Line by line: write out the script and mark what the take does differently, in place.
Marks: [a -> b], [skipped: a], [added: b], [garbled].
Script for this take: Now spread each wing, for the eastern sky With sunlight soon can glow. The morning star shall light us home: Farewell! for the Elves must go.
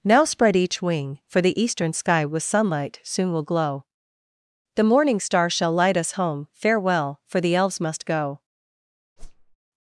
Now spread each wing, for the eastern sky With sunlight soon [can -> will] glow. The morning star shall light us home: Farewell! for the Elves must go.